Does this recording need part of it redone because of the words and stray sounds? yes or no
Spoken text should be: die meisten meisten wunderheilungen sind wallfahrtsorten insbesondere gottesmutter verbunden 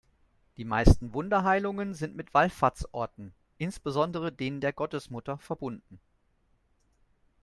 yes